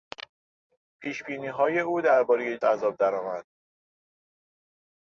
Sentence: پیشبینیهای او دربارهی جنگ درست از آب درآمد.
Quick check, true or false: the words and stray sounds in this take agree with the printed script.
false